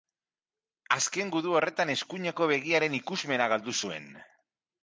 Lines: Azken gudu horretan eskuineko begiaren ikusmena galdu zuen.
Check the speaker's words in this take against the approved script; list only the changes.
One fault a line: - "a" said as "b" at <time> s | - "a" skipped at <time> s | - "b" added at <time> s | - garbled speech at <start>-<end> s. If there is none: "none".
none